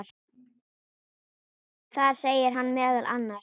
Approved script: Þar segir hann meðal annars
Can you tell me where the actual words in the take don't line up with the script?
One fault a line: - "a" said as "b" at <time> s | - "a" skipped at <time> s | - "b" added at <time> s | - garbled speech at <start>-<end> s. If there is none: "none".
none